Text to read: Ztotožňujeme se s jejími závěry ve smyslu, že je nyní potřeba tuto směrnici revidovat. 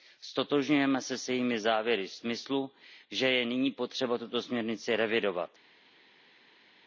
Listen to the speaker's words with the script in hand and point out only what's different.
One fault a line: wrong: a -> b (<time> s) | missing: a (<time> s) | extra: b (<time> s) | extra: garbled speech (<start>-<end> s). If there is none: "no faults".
no faults